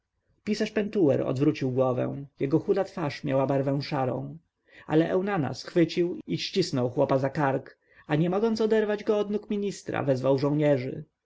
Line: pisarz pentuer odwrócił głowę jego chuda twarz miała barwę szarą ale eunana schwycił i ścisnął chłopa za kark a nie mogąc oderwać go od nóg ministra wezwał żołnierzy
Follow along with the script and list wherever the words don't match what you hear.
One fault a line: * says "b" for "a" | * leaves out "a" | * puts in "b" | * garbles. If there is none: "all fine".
all fine